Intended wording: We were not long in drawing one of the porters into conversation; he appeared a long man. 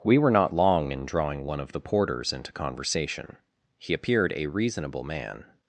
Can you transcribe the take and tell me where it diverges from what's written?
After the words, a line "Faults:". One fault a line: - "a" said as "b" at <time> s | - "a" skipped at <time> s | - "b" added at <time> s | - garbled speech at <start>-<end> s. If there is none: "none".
We were not long in drawing one of the porters into conversation; he appeared a reasonable man.
Faults:
- "long" said as "reasonable" at 4.5 s